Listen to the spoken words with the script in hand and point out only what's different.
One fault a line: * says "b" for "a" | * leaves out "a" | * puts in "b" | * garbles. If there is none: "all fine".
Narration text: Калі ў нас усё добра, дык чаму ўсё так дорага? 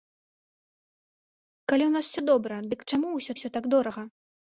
* puts in "ўсё"